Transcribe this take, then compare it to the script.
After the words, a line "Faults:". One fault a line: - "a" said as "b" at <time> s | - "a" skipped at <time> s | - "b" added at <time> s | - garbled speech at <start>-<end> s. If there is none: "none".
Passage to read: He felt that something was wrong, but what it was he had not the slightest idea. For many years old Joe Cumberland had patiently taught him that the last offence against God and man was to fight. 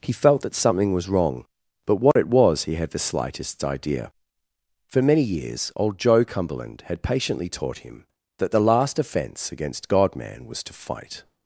He felt that something was wrong, but what it was he had the slightest idea. For many years old Joe Cumberland had patiently taught him that the last offence against God man was to fight.
Faults:
- "not" skipped at 2.9 s
- "and" skipped at 10.2 s